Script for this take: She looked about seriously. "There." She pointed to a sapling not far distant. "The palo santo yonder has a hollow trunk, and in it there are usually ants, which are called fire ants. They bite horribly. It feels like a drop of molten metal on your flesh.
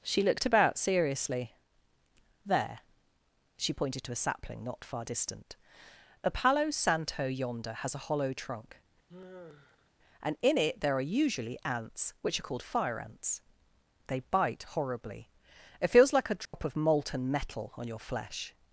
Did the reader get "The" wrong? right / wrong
wrong